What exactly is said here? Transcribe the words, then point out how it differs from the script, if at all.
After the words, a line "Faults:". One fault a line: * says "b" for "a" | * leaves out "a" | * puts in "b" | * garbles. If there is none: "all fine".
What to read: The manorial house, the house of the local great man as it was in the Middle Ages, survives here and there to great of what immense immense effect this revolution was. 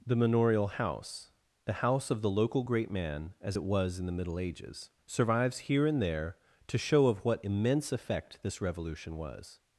The manorial house, the house of the local great man as it was in the Middle Ages, survives here and there to show of what immense effect this revolution was.
Faults:
* says "show" for "great"
* leaves out "immense"